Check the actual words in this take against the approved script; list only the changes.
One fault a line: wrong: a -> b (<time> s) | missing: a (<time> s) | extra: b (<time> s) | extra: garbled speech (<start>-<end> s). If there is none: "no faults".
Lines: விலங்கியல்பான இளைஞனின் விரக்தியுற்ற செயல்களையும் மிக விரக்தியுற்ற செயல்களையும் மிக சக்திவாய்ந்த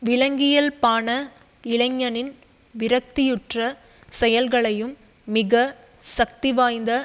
missing: விரக்தியுற்ற செயல்களையும் மிக (5.5 s)